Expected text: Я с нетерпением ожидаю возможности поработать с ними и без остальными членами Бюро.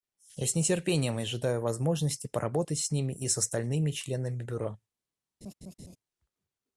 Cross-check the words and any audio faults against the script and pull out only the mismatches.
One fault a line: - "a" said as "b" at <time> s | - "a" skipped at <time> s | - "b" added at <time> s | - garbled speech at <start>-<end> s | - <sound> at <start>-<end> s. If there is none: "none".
- "без" said as "с" at 3.3 s
- laugh at 5.4-6.0 s